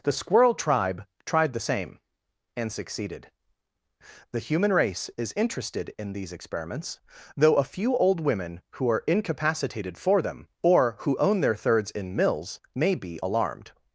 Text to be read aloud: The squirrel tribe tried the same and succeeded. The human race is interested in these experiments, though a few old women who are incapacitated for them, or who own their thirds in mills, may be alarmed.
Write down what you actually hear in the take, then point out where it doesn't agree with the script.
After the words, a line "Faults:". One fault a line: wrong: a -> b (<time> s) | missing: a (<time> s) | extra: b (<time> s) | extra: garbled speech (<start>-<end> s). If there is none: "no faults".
The squirrel tribe tried the same and succeeded. The human race is interested in these experiments, though a few old women who are incapacitated for them, or who own their thirds in mills, may be alarmed.
Faults:
no faults